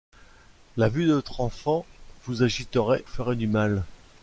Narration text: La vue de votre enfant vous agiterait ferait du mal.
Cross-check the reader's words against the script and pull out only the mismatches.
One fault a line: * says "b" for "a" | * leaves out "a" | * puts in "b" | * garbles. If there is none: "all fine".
all fine